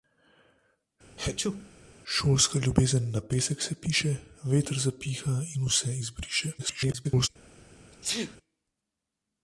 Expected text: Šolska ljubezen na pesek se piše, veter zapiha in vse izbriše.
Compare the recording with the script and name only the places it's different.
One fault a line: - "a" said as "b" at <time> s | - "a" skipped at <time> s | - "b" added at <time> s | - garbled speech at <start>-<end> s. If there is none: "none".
- garbled speech at 6.6-7.3 s